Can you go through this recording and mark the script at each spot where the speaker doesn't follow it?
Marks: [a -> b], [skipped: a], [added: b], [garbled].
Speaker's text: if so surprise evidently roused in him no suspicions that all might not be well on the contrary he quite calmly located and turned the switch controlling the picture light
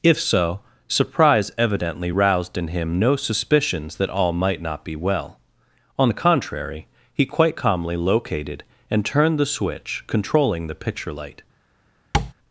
if so surprise evidently roused in him no suspicions that all might not be well on the contrary he quite calmly located and turned the switch controlling the picture light